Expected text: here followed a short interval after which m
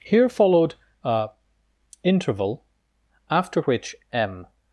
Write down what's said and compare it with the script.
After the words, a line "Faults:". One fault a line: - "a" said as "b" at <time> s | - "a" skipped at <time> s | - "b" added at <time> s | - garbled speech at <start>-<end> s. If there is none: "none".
here followed a interval after which m
Faults:
- "short" skipped at 1.3 s